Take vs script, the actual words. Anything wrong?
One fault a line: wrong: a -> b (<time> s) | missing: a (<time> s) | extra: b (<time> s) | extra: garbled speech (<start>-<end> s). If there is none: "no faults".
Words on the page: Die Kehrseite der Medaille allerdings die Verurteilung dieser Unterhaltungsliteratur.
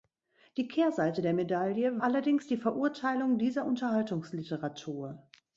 no faults